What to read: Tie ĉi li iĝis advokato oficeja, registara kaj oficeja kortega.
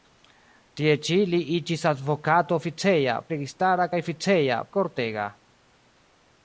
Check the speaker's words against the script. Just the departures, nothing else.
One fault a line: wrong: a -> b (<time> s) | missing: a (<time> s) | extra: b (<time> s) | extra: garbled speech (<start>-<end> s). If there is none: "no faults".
no faults